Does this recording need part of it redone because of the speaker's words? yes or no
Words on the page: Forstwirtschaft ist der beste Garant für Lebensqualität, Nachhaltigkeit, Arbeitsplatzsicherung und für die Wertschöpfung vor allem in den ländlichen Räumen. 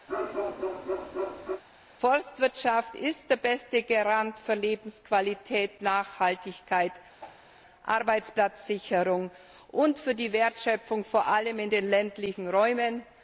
no